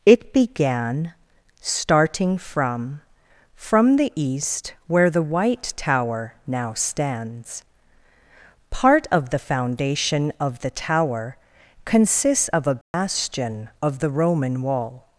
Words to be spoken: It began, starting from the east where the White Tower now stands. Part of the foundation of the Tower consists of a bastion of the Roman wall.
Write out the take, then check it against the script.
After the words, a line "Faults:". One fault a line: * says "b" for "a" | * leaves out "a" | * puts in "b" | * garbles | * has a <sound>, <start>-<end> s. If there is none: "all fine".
It began, starting from from the east where the White Tower now stands. Part of the foundation of the Tower consists of a bastion of the Roman wall.
Faults:
* puts in "from"
* has a dropout, 12.8-12.9 s